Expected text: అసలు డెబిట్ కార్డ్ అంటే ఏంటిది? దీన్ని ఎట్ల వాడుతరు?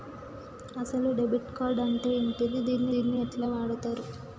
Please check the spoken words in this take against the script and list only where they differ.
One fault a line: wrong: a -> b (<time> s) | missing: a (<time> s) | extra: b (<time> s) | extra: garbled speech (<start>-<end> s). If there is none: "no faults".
extra: దీన్ని (2.9 s)